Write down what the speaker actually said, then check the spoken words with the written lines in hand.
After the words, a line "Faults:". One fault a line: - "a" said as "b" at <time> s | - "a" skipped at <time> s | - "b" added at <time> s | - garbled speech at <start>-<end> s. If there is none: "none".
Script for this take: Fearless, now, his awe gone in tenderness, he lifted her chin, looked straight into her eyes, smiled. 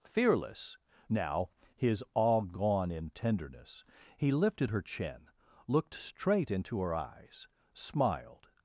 Fearless, now, his awe gone in tenderness, he lifted her chin, looked straight into her eyes, smiled.
Faults:
none